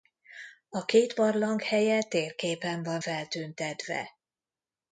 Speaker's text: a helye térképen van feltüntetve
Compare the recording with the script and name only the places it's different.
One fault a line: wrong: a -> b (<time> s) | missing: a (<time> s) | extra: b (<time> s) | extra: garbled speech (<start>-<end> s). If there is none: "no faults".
extra: két barlang (0.8 s)